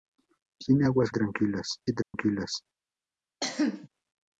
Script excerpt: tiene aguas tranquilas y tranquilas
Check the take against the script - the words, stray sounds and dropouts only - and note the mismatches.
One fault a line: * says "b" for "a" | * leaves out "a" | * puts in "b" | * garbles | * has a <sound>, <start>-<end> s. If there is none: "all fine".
* has a dropout, 2.0-2.1 s
* has a cough, 3.4-3.9 s